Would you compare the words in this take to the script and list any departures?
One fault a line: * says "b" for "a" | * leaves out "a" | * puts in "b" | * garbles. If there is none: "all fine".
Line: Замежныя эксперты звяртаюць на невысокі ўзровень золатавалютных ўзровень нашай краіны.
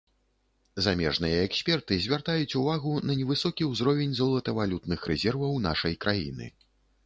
* puts in "увагу"
* says "рэзерваў" for "ўзровень"